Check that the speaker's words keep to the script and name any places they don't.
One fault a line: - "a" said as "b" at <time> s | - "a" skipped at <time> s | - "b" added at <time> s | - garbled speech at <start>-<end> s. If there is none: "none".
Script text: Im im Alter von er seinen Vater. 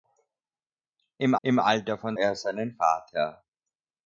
none